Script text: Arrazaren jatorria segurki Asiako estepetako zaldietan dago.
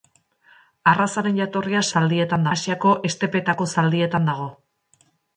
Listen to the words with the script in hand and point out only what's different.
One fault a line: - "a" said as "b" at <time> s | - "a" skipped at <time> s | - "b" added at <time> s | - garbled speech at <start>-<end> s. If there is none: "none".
- "segurki" said as "zaldietan" at 1.9 s